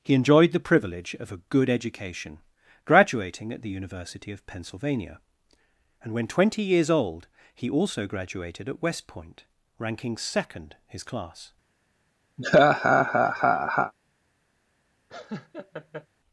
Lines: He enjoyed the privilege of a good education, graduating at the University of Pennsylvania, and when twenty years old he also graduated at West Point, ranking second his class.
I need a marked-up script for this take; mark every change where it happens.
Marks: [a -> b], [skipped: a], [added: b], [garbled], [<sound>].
He enjoyed the privilege of a good education, graduating at the University of Pennsylvania, and when twenty years old he also graduated at West Point, ranking second his class. [laugh] [laugh]